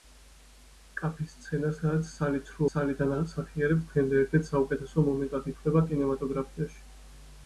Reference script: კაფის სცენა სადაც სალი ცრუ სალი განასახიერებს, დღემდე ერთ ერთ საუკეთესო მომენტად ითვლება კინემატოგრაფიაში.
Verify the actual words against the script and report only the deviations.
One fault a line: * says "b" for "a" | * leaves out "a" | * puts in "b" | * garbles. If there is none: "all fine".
all fine